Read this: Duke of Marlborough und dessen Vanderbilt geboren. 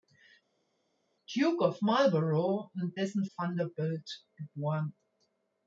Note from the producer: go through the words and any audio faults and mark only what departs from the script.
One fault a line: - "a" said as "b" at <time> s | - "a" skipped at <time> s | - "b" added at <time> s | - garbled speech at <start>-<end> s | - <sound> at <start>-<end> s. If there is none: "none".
none